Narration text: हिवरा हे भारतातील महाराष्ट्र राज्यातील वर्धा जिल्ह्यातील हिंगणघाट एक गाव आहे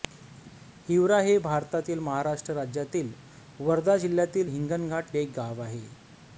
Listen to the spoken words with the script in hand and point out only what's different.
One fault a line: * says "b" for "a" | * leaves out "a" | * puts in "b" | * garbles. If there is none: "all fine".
all fine